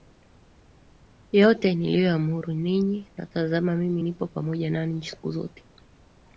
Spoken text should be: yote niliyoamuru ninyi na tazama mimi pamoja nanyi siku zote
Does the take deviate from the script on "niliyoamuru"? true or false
false